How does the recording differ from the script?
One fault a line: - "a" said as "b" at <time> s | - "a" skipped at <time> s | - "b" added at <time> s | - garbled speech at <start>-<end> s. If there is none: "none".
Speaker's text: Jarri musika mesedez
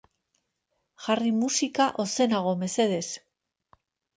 - "ozenago" added at 2.1 s